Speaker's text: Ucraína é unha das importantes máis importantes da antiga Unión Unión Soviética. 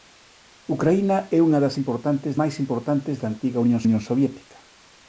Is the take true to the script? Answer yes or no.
yes